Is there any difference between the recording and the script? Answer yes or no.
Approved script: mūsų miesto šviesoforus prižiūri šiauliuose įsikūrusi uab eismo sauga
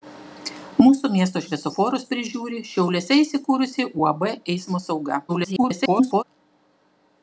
yes